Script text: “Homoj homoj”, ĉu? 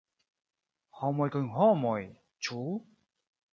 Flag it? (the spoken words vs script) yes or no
yes